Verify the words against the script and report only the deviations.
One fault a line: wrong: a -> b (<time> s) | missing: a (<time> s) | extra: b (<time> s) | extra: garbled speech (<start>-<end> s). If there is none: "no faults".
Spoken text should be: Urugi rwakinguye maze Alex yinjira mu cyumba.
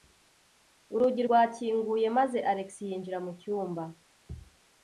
no faults